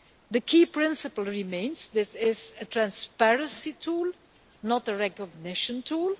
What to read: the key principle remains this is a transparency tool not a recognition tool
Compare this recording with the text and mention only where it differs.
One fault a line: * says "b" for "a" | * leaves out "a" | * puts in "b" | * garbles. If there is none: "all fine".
all fine